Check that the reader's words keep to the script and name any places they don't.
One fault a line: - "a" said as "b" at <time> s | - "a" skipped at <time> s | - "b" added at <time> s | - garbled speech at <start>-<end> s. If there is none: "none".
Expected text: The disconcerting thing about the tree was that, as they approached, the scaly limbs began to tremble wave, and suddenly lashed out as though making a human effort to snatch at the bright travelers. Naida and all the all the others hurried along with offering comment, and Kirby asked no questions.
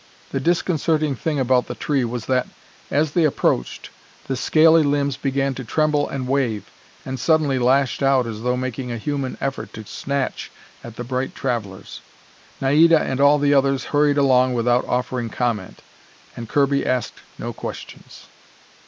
- "and" added at 6.1 s
- "all the" skipped at 13.5 s
- "with" said as "without" at 14.6 s